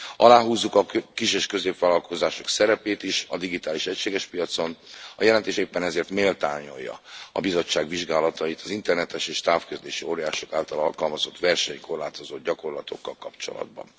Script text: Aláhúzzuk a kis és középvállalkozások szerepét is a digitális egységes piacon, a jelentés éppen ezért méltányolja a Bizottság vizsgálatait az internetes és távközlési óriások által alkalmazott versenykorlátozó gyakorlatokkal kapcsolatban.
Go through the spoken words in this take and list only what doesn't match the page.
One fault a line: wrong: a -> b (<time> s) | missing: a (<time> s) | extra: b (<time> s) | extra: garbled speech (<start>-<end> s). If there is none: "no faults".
no faults